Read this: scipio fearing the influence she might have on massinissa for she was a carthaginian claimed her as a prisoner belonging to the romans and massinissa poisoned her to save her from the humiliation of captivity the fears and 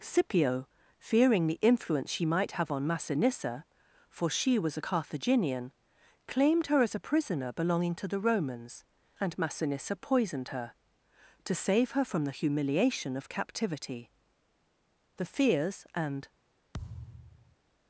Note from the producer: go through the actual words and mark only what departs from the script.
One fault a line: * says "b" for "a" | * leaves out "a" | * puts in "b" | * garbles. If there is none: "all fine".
all fine